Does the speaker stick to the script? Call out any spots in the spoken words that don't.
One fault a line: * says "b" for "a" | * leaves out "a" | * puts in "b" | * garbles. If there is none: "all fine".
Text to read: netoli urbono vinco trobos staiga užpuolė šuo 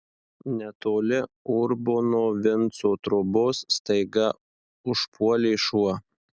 all fine